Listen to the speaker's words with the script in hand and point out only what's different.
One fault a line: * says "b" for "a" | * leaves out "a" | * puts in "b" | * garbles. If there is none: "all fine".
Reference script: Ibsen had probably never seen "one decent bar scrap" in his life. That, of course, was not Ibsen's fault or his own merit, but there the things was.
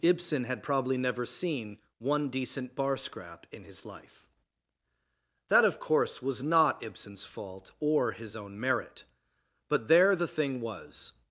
* says "thing" for "things"